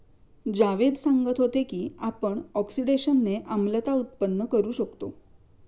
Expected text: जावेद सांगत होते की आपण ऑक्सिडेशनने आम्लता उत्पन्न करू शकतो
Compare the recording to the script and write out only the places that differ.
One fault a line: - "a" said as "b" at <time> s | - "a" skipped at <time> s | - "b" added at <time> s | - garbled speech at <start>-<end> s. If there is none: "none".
none